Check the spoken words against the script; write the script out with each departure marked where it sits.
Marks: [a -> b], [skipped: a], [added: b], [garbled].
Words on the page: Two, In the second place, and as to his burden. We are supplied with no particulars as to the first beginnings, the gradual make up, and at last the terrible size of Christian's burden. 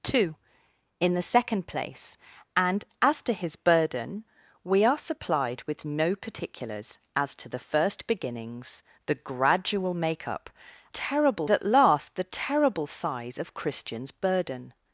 Two, In the second place, and as to his burden. We are supplied with no particulars as to the first beginnings, the gradual make up, [and -> terrible] at last the terrible size of Christian's burden.